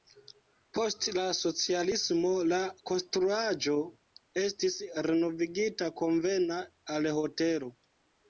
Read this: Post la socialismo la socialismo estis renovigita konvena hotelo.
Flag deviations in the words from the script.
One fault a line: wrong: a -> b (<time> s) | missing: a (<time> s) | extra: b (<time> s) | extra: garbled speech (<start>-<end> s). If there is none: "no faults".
wrong: socialismo -> konstruaĵo (2.9 s)
extra: al (7.0 s)